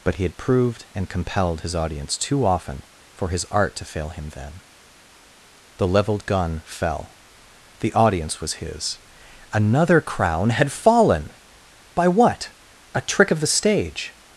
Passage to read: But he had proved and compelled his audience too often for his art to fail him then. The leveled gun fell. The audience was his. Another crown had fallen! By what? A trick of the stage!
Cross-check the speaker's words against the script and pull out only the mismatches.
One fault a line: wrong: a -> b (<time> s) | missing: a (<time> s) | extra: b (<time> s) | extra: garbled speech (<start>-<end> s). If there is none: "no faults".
no faults